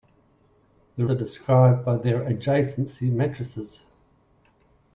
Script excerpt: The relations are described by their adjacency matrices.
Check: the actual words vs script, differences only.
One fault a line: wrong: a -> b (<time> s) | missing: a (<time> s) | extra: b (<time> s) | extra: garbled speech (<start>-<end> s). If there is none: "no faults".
missing: relations (1.1 s)